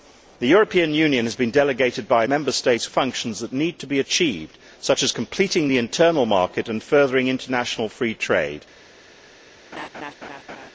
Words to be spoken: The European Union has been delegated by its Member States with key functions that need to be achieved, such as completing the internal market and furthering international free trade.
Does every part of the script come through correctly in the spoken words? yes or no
no